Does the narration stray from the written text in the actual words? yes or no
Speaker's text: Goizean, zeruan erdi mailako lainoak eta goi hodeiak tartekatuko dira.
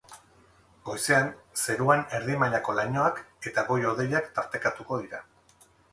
no